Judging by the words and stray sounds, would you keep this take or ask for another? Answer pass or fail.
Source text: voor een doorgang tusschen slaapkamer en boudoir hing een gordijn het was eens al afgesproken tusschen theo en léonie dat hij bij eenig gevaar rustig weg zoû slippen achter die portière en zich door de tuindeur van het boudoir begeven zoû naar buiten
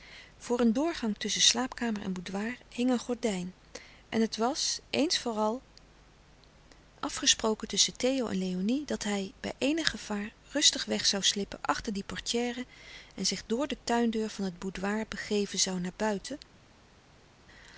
fail